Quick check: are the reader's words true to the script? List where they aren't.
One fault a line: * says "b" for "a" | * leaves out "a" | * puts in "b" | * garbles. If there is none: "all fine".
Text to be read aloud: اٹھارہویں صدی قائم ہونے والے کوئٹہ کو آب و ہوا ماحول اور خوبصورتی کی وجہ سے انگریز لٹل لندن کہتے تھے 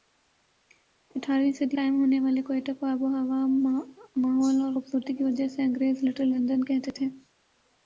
all fine